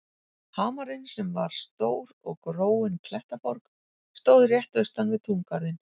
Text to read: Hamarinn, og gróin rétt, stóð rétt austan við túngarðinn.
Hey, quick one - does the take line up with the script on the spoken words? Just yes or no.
no